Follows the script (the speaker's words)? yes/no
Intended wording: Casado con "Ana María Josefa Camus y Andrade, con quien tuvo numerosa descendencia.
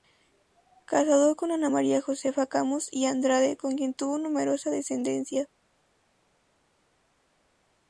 yes